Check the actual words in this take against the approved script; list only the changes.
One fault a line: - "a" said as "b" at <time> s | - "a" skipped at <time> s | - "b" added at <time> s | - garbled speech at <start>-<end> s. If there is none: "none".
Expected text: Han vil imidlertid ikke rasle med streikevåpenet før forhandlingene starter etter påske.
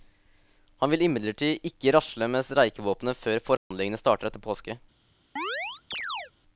none